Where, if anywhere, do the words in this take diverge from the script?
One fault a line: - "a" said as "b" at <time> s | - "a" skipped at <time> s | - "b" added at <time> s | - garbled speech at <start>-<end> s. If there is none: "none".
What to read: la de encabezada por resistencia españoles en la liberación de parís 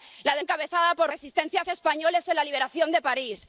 none